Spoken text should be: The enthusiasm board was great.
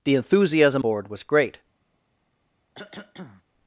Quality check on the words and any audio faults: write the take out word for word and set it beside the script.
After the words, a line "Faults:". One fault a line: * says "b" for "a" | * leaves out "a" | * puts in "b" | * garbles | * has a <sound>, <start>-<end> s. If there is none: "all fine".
The enthusiasm board was great.
Faults:
* has a cough, 2.7-3.4 s